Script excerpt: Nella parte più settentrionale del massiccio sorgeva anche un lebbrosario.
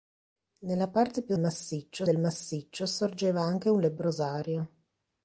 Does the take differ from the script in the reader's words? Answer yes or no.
yes